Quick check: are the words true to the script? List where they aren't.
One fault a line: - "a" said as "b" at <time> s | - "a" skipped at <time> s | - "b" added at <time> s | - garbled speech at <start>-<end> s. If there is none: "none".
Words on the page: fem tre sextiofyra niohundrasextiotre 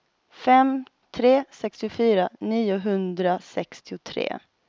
none